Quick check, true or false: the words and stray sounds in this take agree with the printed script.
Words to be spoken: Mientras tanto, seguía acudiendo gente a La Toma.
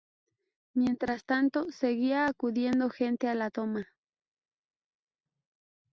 true